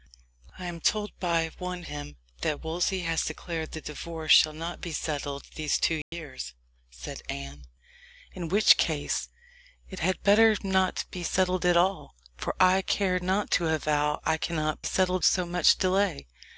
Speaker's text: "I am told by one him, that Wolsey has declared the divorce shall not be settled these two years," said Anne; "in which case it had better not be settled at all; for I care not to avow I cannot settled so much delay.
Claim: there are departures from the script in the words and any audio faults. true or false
true